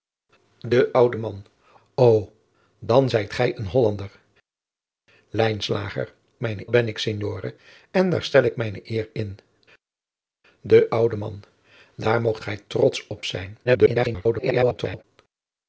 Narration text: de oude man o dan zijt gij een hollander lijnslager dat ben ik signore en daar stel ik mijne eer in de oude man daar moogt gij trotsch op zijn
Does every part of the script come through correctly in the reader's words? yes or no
no